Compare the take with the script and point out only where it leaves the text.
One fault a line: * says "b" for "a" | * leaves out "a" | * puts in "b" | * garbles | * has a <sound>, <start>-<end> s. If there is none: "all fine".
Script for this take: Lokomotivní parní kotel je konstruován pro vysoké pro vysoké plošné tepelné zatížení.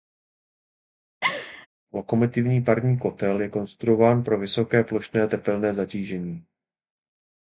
* has a laugh, 1.2-1.7 s
* leaves out "pro vysoké"